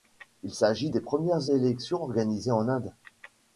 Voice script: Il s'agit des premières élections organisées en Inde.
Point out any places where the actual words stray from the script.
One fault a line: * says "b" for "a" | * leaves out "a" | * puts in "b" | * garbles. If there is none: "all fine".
all fine